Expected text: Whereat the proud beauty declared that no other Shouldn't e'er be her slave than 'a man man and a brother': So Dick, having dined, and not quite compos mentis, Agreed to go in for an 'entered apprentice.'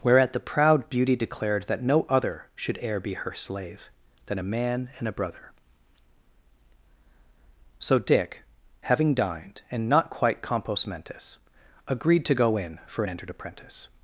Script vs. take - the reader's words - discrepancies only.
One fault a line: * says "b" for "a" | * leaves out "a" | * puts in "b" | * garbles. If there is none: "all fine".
* says "Should" for "Shouldn't"
* leaves out "man"